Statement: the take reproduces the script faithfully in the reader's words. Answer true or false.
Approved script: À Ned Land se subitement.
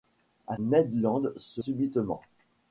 true